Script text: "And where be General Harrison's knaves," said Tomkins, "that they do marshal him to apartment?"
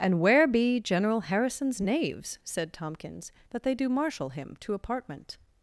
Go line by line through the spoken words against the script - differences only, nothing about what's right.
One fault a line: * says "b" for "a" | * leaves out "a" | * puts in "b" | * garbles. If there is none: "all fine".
all fine